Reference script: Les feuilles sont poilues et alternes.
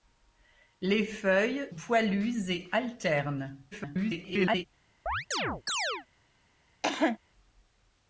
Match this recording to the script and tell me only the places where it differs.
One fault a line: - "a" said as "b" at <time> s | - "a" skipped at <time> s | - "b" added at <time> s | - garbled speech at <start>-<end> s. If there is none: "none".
- "sont" skipped at 1.7 s
- garbled speech at 3.7-4.7 s